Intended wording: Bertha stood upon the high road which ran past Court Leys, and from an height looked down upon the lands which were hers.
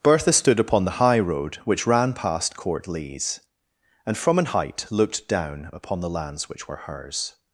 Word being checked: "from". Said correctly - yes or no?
yes